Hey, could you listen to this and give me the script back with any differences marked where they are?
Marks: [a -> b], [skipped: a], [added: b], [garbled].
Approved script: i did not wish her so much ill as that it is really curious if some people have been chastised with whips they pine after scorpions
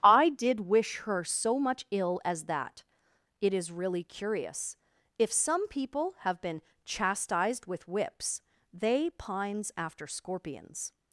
i did [skipped: not] wish her so much ill as that it is really curious if some people have been chastised with whips they [pine -> pines] after scorpions